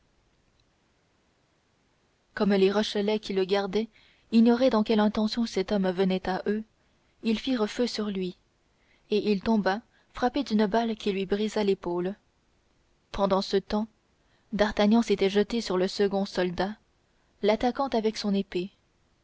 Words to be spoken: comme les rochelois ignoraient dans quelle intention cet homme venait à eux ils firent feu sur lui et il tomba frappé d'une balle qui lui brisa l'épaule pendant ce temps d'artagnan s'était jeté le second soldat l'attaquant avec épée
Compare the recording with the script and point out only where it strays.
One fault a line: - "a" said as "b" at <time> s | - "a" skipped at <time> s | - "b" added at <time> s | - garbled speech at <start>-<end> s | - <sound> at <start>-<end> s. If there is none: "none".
- "qui le gardaient" added at 3.2 s
- "sur" added at 15.6 s
- "son" added at 18.2 s